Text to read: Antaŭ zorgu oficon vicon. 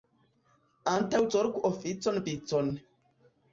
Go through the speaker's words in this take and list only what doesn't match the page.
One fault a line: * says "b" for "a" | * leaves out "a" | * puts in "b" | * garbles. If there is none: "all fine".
all fine